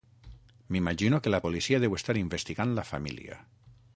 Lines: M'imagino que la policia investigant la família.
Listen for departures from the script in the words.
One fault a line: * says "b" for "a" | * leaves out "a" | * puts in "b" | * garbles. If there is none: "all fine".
* puts in "deu estar"